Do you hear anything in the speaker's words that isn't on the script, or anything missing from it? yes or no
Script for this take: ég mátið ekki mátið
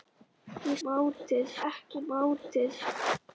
no